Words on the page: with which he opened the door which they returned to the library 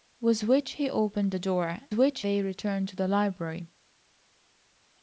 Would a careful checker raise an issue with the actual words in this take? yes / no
no